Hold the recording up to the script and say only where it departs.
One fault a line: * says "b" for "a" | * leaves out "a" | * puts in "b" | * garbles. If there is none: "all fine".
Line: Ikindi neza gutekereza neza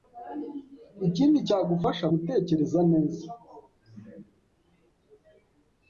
* says "cyagufasha" for "neza"